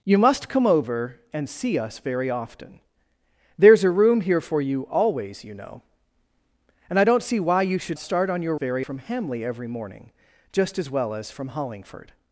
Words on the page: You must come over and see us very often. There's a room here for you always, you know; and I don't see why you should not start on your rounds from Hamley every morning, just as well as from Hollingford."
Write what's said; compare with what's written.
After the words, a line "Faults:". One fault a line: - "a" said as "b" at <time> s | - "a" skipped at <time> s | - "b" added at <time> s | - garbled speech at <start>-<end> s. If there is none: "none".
You must come over and see us very often. There's a room here for you always, you know; and I don't see why you should start on your very from Hamley every morning, just as well as from Hollingford."
Faults:
- "not" skipped at 8.0 s
- "rounds" said as "very" at 8.5 s